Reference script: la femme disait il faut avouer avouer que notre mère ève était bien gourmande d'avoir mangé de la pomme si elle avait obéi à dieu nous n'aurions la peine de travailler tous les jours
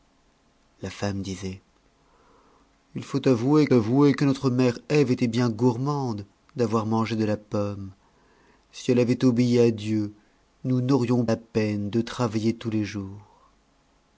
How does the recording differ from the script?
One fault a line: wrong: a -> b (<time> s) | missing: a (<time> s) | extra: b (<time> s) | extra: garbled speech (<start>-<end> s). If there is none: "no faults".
no faults